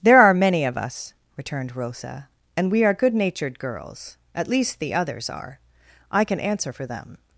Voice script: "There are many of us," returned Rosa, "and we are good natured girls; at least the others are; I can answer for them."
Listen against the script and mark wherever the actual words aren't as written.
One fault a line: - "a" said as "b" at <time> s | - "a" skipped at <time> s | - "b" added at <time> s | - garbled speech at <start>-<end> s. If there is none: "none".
none